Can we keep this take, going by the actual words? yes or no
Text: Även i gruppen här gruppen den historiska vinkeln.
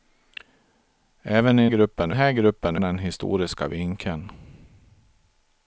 yes